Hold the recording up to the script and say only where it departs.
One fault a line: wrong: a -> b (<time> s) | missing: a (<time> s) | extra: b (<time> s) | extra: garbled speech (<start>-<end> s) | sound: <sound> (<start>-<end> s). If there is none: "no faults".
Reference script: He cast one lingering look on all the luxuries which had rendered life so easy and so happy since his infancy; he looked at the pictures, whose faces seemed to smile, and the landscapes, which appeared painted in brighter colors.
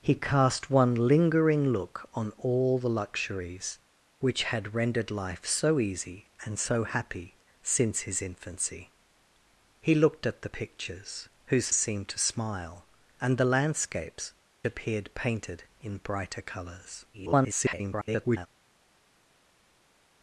missing: faces (11.7 s)
missing: which (14.3 s)
extra: garbled speech (17.1-18.5 s)